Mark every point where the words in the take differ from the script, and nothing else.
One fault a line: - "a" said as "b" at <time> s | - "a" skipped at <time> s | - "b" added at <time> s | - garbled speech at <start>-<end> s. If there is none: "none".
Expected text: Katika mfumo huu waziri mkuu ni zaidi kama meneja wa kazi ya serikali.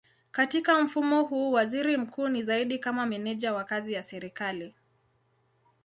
none